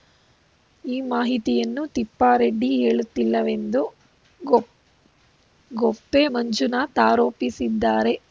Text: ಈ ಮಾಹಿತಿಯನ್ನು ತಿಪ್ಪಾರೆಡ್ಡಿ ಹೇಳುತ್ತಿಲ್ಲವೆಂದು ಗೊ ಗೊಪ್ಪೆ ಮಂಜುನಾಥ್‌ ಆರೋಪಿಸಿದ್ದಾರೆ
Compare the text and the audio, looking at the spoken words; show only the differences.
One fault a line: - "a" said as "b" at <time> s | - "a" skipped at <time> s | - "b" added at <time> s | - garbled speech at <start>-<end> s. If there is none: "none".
none